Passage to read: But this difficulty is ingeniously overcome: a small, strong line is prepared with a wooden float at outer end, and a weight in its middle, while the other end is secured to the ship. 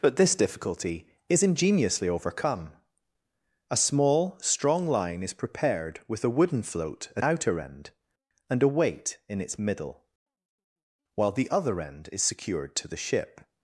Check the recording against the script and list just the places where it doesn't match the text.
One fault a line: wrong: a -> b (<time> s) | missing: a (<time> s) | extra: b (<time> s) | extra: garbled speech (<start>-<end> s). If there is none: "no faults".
no faults